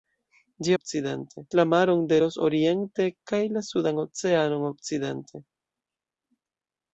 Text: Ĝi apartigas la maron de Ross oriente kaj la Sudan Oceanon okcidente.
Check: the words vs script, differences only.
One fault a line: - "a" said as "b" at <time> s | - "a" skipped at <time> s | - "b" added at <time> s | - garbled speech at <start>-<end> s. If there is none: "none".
- "apartigas" said as "okcidente" at 0.7 s